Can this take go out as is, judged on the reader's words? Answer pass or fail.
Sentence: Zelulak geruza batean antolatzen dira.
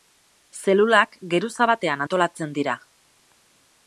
pass